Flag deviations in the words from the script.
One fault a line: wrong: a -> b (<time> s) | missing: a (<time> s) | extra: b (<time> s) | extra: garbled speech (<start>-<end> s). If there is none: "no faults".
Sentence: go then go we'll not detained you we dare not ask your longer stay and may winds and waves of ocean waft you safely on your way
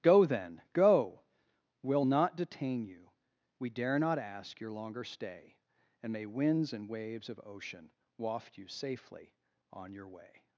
wrong: detained -> detain (2.3 s)